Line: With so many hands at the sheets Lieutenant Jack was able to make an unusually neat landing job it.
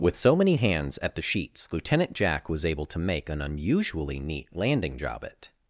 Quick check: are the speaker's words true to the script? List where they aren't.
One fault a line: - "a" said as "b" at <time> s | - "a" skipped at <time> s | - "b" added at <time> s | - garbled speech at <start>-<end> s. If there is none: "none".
none